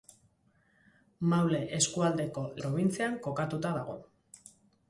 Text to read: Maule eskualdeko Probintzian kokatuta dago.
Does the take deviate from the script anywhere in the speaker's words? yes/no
no